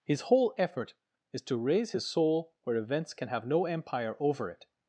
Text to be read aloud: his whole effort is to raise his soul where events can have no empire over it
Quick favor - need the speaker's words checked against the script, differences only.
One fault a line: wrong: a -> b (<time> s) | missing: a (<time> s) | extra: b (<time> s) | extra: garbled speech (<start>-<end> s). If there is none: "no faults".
no faults